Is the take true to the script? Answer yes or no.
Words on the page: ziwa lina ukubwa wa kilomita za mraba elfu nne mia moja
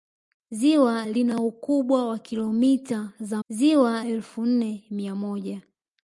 no